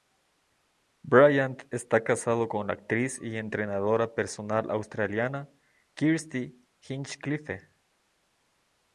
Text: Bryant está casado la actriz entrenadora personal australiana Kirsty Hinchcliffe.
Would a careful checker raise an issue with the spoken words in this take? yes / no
yes